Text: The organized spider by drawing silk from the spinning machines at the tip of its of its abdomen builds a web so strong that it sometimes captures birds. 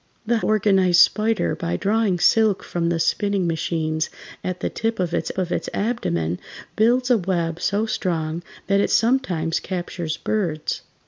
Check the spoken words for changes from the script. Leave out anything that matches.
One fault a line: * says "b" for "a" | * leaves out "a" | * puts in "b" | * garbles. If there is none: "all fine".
all fine